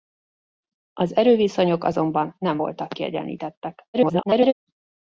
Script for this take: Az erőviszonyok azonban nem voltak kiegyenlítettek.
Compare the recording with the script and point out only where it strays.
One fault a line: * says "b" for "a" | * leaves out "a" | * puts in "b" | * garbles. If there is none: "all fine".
* garbles